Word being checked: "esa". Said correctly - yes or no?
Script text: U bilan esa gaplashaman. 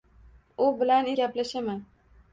no